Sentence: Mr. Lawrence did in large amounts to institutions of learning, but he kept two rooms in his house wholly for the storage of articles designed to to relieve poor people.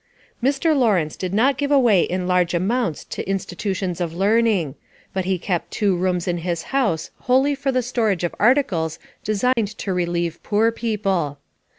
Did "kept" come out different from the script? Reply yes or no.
no